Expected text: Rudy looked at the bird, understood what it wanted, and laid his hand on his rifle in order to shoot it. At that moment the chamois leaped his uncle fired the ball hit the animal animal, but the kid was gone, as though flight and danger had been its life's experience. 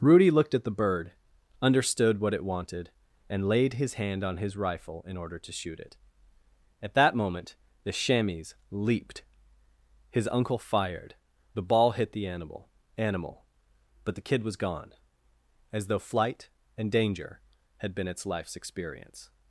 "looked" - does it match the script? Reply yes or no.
yes